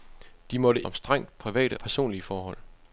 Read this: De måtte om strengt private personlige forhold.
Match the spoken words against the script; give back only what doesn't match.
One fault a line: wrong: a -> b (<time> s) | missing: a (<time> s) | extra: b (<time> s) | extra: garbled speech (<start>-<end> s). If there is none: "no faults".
no faults